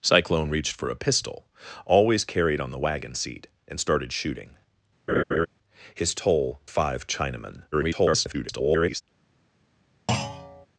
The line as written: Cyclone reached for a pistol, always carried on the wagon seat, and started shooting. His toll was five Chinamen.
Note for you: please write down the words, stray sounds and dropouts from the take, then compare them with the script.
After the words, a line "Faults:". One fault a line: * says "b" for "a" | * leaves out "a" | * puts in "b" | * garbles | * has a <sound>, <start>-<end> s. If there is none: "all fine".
Cyclone reached for a pistol, always carried on the wagon seat, and started shooting. His toll five Chinamen. [garbled]
Faults:
* has a laugh, 5.1-5.5 s
* leaves out "was"
* garbles
* has a thud, 10.1-10.7 s